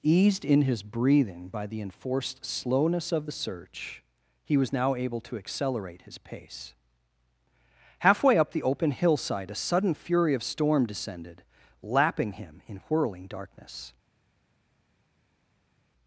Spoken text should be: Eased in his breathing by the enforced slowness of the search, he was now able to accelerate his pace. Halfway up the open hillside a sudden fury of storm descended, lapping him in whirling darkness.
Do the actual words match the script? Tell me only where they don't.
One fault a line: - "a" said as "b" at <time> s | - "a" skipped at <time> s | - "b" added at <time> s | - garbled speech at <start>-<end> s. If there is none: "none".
none